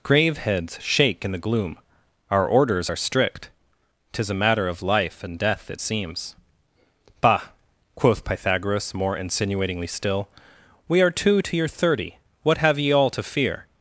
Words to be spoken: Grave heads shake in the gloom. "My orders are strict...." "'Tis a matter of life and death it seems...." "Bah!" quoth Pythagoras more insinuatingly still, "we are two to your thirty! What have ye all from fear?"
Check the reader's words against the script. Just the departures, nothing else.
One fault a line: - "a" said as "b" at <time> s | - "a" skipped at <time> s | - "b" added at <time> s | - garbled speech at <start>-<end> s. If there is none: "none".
- "My" said as "Our" at 2.3 s
- "from" said as "to" at 13.1 s